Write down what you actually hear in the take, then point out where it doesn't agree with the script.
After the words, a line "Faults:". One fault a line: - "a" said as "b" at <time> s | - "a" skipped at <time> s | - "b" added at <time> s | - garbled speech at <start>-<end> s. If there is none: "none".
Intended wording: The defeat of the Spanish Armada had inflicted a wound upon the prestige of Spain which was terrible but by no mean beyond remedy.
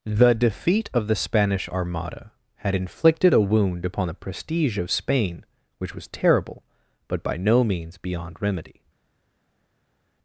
The defeat of the Spanish Armada had inflicted a wound upon the prestige of Spain which was terrible but by no means beyond remedy.
Faults:
- "mean" said as "means" at 7.6 s